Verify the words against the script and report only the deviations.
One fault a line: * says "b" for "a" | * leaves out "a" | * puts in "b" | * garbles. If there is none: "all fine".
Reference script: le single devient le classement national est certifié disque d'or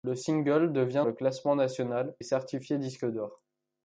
all fine